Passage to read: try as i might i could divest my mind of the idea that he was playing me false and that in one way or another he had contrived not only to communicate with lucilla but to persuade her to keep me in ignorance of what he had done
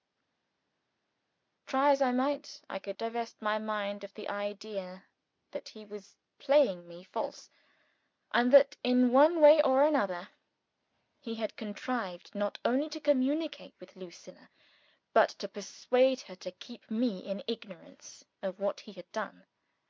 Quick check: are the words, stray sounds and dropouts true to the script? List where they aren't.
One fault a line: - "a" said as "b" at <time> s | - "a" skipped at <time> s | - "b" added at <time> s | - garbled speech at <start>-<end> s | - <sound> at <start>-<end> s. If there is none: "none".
none